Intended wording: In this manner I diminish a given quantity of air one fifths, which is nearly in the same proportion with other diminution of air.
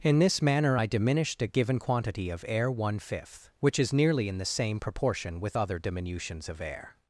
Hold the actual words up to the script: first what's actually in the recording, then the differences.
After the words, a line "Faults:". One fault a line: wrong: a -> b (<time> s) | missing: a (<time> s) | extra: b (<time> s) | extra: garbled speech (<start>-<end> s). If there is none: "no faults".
In this manner I diminished a given quantity of air one fifth, which is nearly in the same proportion with other diminutions of air.
Faults:
wrong: diminish -> diminished (0.9 s)
wrong: fifths -> fifth (3.0 s)
wrong: diminution -> diminutions (5.8 s)